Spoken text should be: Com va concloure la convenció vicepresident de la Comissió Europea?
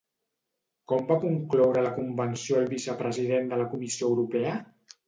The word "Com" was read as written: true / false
true